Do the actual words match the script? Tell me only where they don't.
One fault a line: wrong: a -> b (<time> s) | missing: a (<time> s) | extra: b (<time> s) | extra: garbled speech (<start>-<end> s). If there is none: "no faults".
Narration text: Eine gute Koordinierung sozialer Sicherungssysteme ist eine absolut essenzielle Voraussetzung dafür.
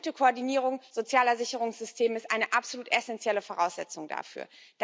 no faults